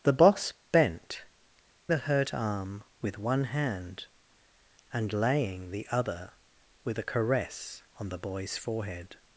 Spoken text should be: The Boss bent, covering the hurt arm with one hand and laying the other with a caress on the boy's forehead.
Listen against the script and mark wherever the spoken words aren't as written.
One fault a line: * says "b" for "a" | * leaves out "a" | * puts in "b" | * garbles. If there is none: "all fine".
* leaves out "covering"